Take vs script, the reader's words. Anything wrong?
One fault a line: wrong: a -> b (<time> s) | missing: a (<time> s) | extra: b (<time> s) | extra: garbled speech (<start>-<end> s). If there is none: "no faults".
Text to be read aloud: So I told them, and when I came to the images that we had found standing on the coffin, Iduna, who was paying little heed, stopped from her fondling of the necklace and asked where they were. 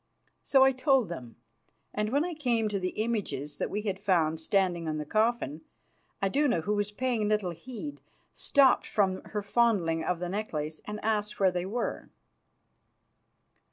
no faults